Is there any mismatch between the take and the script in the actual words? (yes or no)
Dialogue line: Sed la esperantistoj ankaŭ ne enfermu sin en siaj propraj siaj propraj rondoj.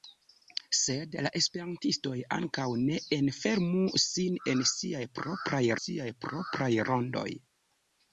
no